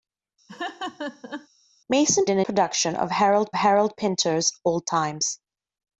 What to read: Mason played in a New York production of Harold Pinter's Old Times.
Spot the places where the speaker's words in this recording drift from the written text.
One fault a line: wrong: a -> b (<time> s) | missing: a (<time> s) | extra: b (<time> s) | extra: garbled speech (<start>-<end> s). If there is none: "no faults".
missing: played (2.2 s)
missing: New York (2.5 s)
extra: Harold (3.5 s)